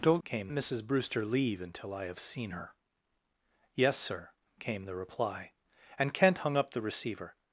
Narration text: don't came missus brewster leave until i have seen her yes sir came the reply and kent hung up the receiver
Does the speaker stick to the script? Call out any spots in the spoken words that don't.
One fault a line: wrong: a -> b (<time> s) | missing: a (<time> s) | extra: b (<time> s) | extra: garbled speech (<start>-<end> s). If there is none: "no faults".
no faults